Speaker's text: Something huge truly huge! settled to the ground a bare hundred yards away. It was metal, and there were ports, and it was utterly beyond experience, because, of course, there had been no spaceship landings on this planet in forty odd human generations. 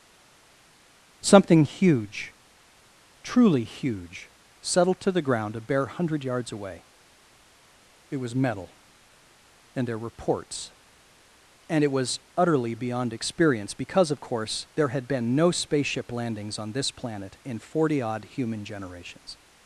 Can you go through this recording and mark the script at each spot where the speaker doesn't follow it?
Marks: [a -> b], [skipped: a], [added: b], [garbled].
Something huge truly huge! settled to the ground a bare hundred yards away. It was metal, and there were ports, and it was utterly beyond experience, because, of course, there had been no spaceship landings on this planet in forty odd human generations.